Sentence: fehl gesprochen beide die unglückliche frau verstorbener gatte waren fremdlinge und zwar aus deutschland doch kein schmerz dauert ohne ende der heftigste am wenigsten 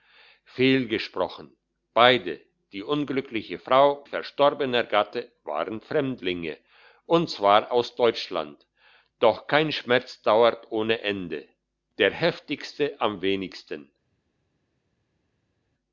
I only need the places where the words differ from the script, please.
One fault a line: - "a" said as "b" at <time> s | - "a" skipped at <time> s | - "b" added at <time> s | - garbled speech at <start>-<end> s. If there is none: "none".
none